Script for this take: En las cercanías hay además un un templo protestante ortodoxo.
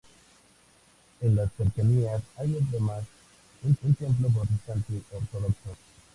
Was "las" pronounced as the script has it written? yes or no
yes